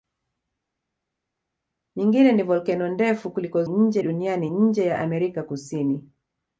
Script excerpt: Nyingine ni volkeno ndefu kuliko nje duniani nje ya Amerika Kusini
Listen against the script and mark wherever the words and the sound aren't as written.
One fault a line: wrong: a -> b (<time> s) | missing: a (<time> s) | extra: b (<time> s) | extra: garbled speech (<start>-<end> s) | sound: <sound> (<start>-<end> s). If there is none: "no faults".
no faults